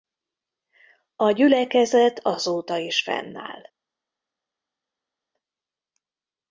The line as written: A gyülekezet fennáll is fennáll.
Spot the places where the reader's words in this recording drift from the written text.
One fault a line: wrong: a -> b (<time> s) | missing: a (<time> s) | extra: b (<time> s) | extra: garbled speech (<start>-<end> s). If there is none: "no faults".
wrong: fennáll -> azóta (2.2 s)